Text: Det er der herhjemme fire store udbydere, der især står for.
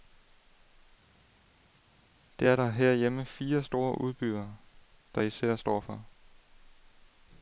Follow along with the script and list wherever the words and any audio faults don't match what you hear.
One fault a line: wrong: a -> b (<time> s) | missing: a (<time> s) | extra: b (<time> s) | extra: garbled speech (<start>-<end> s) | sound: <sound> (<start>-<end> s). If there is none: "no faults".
no faults